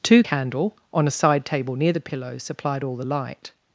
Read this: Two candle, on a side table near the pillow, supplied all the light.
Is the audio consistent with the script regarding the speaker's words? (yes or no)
yes